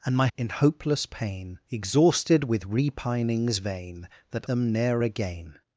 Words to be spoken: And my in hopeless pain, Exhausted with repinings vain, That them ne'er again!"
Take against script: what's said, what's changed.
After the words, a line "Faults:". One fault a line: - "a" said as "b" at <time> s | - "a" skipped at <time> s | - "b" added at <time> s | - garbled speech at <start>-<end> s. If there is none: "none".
And my in hopeless pain, Exhausted with repinings vain, That them ne'er again!"
Faults:
none